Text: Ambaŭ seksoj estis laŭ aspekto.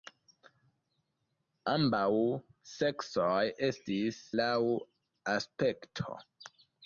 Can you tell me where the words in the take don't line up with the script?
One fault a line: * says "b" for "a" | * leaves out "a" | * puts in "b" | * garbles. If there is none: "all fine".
all fine